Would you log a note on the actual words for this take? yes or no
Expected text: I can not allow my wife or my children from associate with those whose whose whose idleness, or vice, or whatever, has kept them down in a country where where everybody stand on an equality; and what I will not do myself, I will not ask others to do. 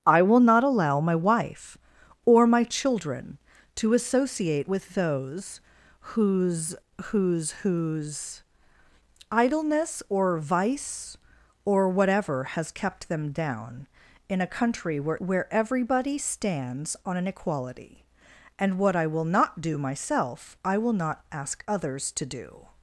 yes